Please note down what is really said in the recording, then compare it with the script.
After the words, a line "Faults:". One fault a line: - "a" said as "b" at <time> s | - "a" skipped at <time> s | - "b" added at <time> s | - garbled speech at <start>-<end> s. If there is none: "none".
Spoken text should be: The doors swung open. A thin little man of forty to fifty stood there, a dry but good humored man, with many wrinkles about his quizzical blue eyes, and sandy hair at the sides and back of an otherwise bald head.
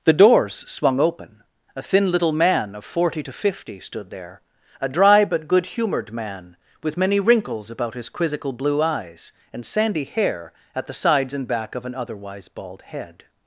The doors swung open. A thin little man of forty to fifty stood there, a dry but good humored man, with many wrinkles about his quizzical blue eyes, and sandy hair at the sides and back of an otherwise bald head.
Faults:
none